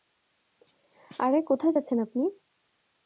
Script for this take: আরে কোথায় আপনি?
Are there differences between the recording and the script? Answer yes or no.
yes